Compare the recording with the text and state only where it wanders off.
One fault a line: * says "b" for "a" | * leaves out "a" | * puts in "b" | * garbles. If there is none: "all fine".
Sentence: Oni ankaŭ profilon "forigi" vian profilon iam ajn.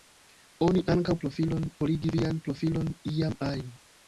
all fine